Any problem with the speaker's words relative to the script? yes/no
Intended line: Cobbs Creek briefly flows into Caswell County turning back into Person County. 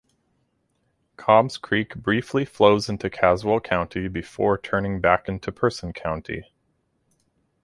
yes